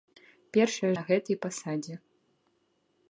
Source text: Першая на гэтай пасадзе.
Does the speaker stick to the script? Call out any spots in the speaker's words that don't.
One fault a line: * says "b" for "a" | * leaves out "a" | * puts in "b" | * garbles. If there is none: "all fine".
all fine